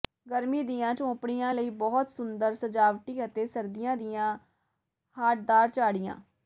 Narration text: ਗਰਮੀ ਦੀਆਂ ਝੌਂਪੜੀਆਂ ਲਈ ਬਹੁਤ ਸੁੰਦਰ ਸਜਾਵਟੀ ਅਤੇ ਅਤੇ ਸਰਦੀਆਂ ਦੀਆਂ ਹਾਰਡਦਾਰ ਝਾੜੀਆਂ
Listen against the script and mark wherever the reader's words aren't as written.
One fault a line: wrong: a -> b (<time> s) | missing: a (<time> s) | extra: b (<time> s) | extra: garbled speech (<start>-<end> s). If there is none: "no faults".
missing: ਅਤੇ (3.5 s)